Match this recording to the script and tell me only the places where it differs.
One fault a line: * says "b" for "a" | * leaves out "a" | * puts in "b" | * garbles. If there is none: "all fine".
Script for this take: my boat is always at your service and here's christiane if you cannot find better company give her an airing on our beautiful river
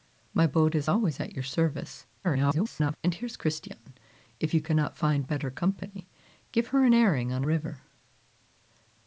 * garbles
* leaves out "our beautiful"